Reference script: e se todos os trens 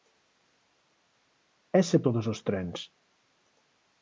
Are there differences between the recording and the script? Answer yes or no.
no